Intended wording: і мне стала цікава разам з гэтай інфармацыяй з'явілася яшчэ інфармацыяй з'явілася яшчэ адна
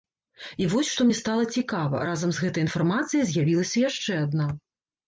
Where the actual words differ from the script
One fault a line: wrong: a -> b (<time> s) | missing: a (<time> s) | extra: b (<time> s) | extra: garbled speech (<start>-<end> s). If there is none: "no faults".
extra: вось што (0.7 s)
missing: інфармацыяй з'явілася яшчэ (4.2 s)